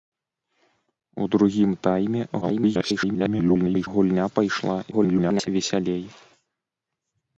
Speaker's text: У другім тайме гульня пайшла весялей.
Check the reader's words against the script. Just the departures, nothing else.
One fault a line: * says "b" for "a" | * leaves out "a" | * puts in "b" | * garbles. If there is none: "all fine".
* garbles
* garbles